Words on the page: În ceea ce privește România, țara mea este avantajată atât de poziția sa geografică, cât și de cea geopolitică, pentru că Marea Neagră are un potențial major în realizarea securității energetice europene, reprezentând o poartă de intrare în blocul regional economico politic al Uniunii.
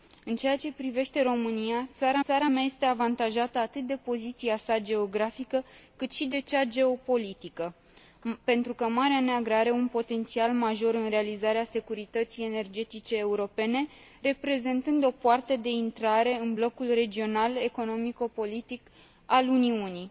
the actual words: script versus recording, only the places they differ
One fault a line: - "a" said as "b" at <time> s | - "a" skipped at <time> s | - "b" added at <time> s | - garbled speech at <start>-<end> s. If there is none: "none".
- "țara" added at 2.2 s